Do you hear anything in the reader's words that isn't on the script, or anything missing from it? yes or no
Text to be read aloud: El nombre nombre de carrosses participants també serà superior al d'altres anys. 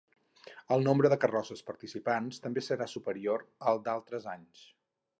yes